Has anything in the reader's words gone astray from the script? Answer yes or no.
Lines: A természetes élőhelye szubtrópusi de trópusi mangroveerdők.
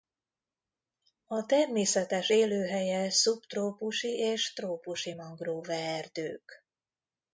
yes